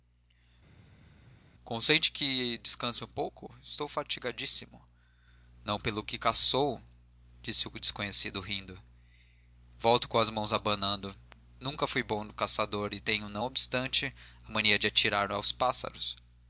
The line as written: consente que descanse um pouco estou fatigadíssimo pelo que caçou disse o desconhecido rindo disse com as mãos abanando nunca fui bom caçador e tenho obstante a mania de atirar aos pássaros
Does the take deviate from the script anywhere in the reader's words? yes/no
yes